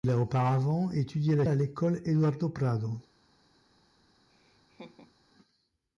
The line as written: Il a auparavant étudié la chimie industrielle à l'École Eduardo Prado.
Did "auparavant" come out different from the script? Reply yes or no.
no